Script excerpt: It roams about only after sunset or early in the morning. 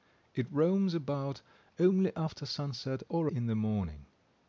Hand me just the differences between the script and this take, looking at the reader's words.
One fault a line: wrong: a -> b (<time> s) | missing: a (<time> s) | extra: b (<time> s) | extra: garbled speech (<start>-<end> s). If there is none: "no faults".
missing: early (3.3 s)